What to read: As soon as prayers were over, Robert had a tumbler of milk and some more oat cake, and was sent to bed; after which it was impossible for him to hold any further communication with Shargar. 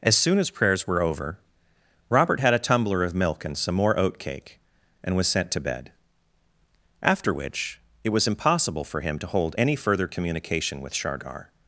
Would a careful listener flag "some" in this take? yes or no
no